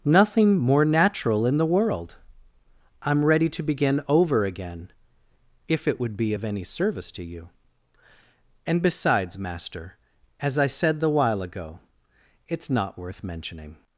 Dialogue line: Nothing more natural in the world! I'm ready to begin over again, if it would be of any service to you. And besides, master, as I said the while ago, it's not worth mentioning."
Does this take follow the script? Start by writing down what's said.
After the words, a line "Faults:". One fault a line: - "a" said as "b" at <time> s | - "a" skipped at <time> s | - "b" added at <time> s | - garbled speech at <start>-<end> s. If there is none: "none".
Nothing more natural in the world! I'm ready to begin over again, if it would be of any service to you. And besides, master, as I said the while ago, it's not worth mentioning."
Faults:
none